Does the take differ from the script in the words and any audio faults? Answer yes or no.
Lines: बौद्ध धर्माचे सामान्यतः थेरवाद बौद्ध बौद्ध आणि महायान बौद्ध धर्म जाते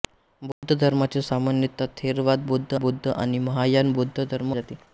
yes